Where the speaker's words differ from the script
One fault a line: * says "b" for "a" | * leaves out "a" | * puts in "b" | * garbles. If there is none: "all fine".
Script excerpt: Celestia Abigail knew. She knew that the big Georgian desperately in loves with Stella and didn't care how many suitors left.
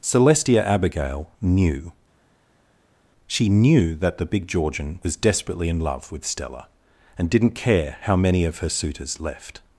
* puts in "was"
* says "love" for "loves"
* puts in "of her"